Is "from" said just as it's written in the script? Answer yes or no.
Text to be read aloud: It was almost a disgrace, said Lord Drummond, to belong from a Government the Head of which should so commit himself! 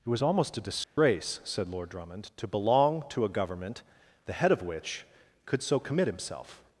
no